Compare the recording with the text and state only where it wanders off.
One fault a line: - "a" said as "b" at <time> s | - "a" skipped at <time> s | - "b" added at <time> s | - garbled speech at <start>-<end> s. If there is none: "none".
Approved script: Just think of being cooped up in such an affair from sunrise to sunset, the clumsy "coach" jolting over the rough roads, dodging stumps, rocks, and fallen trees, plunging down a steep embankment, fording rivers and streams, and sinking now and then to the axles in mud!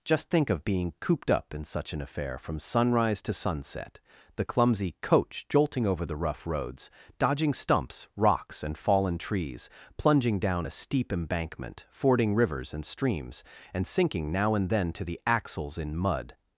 none